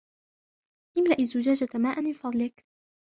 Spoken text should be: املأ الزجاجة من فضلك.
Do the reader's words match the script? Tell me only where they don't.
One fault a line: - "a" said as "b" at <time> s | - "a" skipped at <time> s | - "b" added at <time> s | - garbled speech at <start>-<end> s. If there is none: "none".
- "ماءا" added at 1.7 s